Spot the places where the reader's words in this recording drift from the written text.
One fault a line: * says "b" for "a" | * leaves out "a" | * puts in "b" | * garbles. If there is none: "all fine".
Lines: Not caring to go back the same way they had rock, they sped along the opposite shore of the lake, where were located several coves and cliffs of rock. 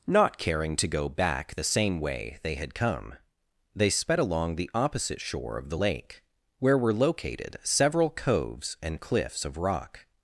* says "come" for "rock"